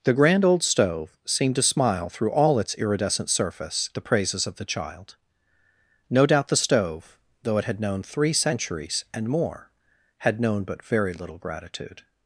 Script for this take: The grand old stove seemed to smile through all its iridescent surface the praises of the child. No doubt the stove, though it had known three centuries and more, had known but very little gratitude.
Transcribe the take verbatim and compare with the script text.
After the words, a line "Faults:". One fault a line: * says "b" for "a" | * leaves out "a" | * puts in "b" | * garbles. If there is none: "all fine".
The grand old stove seemed to smile through all its iridescent surface the praises of the child. No doubt the stove, though it had known three centuries and more, had known but very little gratitude.
Faults:
all fine